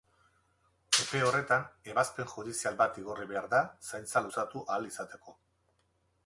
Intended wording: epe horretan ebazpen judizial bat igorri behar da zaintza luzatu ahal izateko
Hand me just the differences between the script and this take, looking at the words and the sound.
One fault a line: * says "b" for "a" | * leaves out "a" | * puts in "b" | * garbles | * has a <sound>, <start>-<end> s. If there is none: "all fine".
all fine